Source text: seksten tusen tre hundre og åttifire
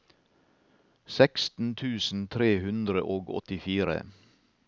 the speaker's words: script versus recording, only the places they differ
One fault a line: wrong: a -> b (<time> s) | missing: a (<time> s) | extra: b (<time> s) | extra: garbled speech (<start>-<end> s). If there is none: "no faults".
no faults